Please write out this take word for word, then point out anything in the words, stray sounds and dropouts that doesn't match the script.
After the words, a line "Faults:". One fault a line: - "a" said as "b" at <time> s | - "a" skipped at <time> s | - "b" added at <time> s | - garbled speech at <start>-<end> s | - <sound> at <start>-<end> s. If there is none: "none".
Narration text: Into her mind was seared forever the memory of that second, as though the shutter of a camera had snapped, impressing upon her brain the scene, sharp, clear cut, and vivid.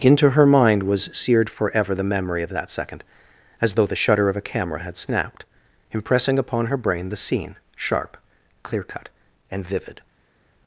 Into her mind was seared forever the memory of that second, as though the shutter of a camera had snapped, impressing upon her brain the scene, sharp, clear cut, and vivid.
Faults:
none